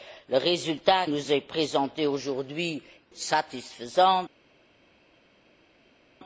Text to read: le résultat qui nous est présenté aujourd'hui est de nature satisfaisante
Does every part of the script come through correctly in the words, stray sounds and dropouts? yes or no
no